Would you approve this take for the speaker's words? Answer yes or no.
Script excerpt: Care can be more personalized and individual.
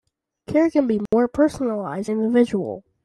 no